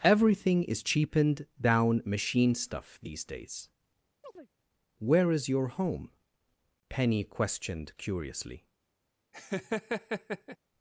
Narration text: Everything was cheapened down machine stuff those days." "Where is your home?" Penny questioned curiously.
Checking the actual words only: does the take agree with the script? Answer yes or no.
no